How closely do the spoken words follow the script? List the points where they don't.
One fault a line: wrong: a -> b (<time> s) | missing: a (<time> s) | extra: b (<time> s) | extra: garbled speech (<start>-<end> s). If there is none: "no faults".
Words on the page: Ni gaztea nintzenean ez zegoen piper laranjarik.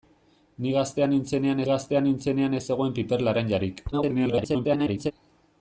extra: gaztea nintzenean (1.7 s)
extra: garbled speech (3.9-5.1 s)